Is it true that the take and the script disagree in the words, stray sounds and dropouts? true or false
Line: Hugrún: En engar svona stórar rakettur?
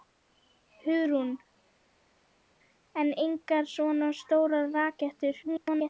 true